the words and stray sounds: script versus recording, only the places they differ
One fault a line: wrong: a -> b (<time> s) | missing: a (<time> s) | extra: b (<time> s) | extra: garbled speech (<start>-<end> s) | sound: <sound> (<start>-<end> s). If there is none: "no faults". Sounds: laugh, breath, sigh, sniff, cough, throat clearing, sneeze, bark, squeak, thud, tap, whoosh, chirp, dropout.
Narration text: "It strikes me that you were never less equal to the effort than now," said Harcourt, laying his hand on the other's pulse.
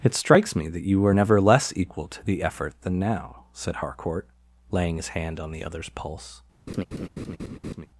sound: laugh (6.7-7.9 s)